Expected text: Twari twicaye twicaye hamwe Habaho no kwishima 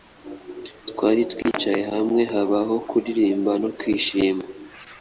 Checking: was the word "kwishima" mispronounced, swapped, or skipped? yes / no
no